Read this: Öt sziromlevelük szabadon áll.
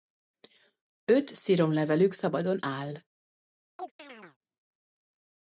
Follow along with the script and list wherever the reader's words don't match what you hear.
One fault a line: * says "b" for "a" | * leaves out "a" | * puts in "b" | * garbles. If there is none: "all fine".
all fine